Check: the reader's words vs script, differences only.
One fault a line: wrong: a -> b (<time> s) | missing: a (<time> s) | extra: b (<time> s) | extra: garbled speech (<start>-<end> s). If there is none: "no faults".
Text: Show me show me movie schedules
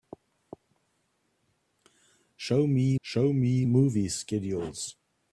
no faults